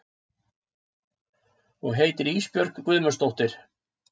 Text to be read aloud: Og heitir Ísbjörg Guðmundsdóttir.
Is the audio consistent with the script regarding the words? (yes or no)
yes